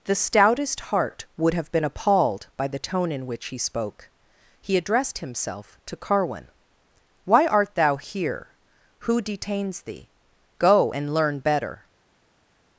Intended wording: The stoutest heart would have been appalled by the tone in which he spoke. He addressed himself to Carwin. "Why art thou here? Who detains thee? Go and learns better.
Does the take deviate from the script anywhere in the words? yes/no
yes